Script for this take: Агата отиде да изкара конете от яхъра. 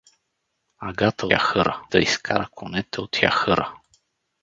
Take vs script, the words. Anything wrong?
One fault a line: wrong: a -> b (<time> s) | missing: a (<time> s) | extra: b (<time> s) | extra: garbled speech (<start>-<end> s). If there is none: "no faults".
wrong: отиде -> яхъра (1.3 s)